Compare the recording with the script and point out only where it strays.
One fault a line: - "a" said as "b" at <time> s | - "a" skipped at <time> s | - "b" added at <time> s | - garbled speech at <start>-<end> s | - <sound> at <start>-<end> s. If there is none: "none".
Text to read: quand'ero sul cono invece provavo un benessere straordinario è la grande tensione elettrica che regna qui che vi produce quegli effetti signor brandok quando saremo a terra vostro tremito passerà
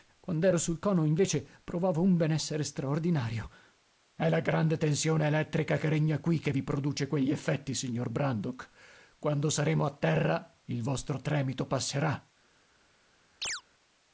- "il" added at 10.7 s
- chirp at 13.4-13.6 s